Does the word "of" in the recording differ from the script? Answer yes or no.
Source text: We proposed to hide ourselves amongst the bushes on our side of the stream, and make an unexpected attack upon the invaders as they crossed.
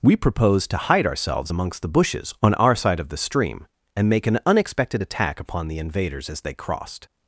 no